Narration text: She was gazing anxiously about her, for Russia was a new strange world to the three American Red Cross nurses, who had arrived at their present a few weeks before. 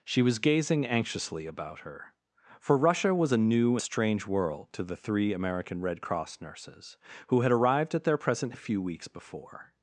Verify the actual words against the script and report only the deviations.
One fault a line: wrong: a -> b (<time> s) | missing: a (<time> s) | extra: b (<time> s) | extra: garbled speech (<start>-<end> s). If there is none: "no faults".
no faults